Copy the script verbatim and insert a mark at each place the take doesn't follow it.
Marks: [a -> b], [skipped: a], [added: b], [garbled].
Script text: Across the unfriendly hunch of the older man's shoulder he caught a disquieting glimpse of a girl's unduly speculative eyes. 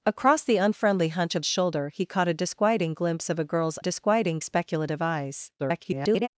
Across the unfriendly hunch of [skipped: the older man's] shoulder he caught a disquieting glimpse of a girl's [unduly -> disquieting] speculative eyes. [garbled]